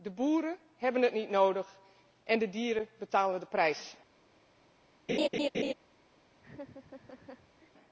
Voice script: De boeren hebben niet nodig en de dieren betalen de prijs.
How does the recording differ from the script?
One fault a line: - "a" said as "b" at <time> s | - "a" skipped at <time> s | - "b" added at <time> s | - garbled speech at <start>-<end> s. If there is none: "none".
- "het" added at 1.0 s